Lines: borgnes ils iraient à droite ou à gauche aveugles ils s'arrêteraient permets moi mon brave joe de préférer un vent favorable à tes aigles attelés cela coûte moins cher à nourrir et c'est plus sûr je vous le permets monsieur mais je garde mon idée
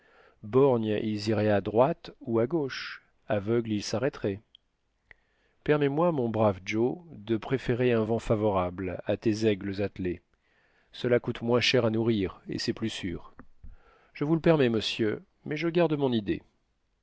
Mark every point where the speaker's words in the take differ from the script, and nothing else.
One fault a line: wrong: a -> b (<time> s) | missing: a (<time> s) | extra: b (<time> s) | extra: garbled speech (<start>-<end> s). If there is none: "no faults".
no faults